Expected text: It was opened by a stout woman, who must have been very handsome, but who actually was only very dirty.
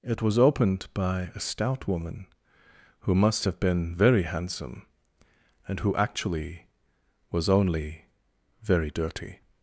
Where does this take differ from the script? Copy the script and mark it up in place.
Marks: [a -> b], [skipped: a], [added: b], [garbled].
It was opened by a stout woman, who must have been very handsome, [but -> and] who actually was only very dirty.